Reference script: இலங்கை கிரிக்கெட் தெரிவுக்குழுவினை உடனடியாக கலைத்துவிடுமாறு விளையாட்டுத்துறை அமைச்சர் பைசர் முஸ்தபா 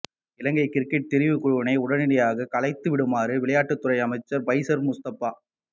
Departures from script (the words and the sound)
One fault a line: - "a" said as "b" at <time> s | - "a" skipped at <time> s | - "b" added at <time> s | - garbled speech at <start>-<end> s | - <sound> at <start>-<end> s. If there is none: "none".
none